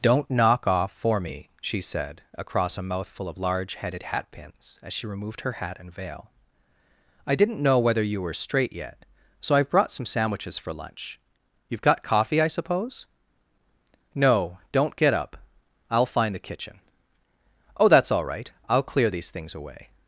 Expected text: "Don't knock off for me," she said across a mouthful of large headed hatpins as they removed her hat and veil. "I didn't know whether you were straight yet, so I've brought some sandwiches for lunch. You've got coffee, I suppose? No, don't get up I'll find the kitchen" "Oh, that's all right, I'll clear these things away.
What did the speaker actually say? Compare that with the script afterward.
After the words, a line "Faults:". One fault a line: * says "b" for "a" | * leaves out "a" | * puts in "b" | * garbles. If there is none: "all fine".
"Don't knock off for me," she said across a mouthful of large headed hatpins as she removed her hat and veil. "I didn't know whether you were straight yet, so I've brought some sandwiches for lunch. You've got coffee, I suppose? No, don't get up I'll find the kitchen" "Oh, that's all right, I'll clear these things away.
Faults:
* says "she" for "they"